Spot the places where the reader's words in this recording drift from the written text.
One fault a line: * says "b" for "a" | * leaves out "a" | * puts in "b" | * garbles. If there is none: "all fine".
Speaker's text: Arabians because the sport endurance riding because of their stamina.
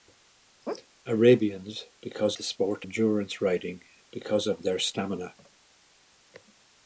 all fine